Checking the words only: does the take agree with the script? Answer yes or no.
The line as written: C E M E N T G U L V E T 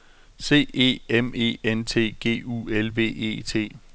yes